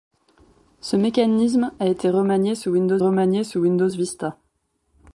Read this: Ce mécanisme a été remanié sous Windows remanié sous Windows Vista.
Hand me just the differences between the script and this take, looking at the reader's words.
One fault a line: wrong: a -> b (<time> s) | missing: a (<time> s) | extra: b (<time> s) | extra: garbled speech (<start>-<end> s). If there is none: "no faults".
no faults